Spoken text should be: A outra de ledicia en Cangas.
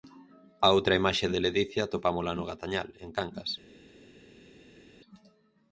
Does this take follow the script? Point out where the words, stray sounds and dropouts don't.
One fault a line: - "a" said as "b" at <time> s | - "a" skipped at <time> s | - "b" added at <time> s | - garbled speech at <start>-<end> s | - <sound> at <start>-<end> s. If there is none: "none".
- "imaxe" added at 1.0 s
- "atopámola no Gatañal" added at 1.8 s